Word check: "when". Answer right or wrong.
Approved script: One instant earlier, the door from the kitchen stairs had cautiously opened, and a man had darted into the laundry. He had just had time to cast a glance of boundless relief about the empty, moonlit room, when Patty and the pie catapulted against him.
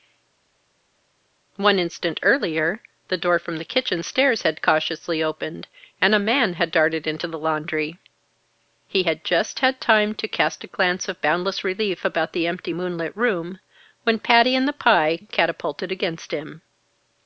right